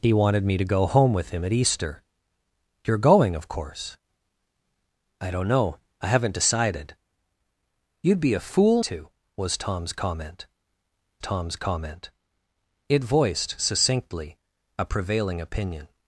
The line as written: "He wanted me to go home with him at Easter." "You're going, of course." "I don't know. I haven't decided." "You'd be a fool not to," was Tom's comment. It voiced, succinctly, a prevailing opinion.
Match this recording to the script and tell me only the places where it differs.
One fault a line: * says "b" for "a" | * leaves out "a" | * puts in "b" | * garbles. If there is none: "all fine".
* leaves out "not"
* puts in "Tom's comment"